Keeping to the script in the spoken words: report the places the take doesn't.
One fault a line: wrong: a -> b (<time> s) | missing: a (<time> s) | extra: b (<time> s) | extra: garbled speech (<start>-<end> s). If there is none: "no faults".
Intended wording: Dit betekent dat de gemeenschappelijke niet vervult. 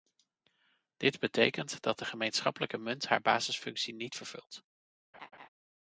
extra: munt haar basisfunctie (2.8 s)